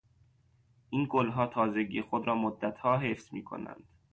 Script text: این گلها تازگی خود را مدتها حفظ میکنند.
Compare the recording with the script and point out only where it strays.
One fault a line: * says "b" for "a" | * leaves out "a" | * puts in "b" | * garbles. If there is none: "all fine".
all fine